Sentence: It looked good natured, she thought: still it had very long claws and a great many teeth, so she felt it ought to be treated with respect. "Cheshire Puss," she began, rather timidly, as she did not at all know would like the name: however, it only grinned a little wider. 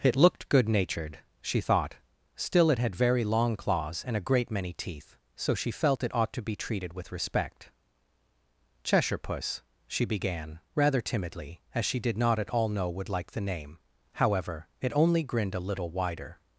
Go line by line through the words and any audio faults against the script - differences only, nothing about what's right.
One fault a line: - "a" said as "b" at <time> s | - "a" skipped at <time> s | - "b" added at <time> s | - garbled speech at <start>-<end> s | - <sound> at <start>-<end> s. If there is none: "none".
none